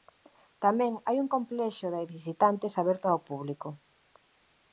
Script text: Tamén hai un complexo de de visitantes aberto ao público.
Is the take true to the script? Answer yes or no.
no